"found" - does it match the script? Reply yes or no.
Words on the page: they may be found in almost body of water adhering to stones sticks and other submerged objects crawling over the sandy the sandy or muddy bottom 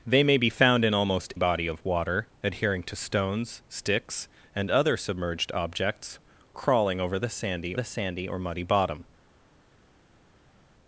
yes